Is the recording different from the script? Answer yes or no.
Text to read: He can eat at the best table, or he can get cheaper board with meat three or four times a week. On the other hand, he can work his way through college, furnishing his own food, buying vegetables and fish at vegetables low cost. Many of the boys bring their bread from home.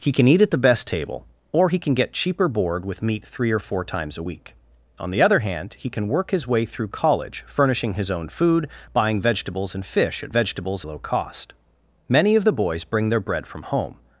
no